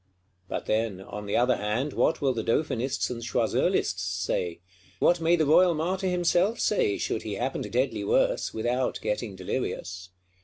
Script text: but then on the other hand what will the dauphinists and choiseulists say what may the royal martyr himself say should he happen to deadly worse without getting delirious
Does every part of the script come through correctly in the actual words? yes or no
yes